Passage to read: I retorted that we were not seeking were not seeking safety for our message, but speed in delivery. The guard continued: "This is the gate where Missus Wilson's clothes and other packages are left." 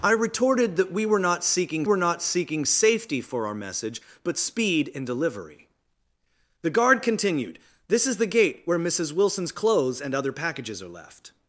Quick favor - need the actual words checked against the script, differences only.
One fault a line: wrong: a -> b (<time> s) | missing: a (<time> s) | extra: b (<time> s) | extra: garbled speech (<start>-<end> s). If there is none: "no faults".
no faults